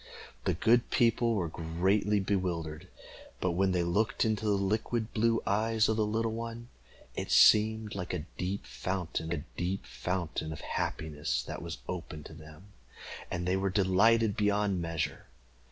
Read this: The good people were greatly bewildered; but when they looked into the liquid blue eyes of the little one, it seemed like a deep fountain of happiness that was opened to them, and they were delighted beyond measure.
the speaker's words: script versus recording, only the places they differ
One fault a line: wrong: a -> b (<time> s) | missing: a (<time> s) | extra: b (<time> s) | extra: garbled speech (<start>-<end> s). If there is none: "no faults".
extra: a deep fountain (9.3 s)